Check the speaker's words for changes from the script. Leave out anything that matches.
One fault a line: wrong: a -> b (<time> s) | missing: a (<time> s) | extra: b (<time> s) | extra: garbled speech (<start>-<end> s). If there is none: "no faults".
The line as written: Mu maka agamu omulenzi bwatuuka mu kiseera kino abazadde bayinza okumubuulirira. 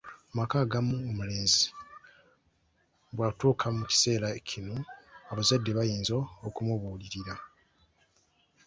no faults